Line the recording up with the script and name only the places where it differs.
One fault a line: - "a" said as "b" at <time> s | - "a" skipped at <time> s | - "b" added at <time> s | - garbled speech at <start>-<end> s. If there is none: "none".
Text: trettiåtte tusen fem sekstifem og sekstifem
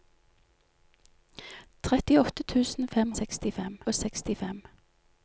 none